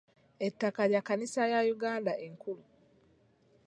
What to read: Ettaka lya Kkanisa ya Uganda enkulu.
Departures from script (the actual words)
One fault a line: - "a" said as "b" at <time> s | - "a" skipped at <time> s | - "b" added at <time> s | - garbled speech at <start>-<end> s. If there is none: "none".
none